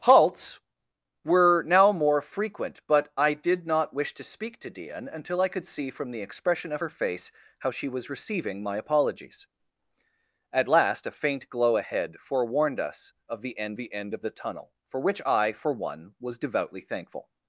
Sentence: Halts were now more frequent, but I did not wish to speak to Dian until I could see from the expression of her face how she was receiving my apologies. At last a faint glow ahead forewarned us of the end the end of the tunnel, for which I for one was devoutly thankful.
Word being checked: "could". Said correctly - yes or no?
yes